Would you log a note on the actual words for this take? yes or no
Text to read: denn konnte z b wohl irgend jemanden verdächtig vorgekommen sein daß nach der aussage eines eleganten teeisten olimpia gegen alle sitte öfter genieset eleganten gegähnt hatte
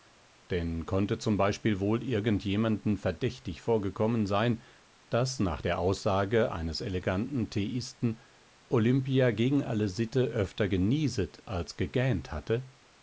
yes